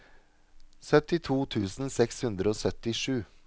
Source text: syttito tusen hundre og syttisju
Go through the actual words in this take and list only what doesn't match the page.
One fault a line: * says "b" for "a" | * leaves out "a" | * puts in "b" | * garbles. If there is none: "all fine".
* puts in "seks"